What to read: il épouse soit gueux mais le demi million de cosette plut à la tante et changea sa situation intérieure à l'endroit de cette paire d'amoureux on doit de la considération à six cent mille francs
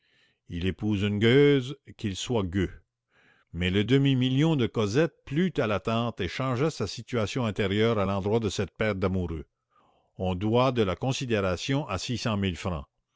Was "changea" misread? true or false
false